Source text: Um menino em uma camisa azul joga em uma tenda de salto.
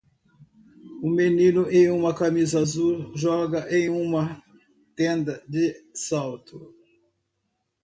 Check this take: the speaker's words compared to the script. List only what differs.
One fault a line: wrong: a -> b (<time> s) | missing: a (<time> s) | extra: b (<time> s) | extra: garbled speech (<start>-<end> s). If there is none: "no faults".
no faults